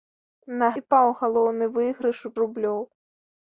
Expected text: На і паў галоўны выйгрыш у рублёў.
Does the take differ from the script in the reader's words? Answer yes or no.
no